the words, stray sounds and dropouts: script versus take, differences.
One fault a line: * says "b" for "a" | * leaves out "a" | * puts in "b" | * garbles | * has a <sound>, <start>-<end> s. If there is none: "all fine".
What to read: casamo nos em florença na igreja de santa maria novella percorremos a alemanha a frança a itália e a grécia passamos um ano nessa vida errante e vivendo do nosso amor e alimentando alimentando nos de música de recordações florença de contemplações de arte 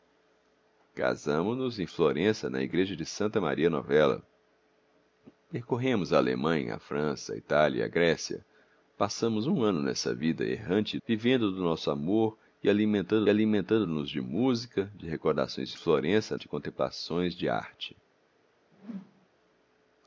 * has a whoosh, 18.7-19.3 s